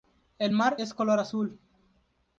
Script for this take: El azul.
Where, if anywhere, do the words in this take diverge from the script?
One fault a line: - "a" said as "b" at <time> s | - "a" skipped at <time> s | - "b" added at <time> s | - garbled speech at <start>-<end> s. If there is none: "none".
- "mar es color" added at 0.5 s